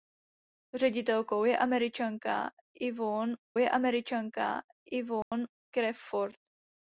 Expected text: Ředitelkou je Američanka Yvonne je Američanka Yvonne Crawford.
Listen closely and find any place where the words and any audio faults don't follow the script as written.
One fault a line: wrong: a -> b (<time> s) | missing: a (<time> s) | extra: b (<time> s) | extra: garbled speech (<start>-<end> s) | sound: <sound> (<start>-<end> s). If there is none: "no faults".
sound: dropout (5.2-5.3 s)